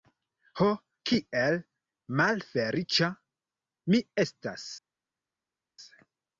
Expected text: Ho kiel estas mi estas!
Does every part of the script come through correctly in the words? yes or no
no